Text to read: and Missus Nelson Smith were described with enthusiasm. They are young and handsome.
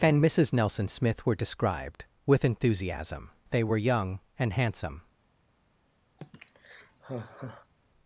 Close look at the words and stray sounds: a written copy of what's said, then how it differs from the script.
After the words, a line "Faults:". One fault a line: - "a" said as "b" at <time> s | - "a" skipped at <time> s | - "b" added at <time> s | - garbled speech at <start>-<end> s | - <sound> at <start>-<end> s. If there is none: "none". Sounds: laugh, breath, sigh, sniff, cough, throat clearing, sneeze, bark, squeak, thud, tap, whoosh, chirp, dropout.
and Missus Nelson Smith were described with enthusiasm. They were young and handsome.
Faults:
- "are" said as "were" at 3.6 s
- sigh at 6.2-7.7 s